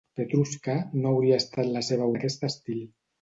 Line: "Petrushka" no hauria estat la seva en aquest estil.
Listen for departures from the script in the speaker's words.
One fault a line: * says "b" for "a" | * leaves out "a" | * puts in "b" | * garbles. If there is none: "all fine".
all fine